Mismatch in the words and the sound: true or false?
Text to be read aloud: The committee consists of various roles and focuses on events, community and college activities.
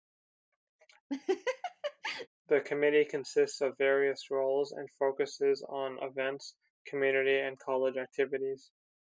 true